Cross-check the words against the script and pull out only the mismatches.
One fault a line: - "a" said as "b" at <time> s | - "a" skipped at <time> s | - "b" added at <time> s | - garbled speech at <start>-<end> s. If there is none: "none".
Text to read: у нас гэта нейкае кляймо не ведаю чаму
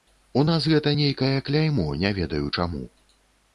none